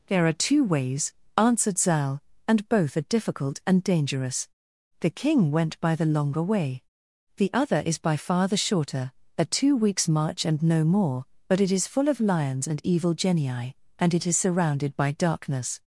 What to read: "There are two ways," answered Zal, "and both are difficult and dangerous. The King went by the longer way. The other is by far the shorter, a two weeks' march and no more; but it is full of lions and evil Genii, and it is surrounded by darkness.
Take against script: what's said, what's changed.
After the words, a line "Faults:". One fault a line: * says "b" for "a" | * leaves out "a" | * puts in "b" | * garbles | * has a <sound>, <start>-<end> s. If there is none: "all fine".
"There are two ways," answered Zal, "and both are difficult and dangerous. The King went by the longer way. The other is by far the shorter, a two weeks' march and no more; but it is full of lions and evil Genii, and it is surrounded by darkness.
Faults:
all fine